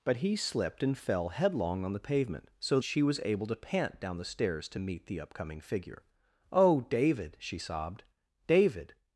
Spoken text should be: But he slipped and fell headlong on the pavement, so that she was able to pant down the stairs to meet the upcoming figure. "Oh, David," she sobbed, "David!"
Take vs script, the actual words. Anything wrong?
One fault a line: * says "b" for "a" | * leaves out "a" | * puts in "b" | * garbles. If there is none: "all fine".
* leaves out "that"